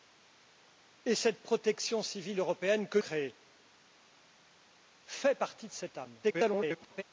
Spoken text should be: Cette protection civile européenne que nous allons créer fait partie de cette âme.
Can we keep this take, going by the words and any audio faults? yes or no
no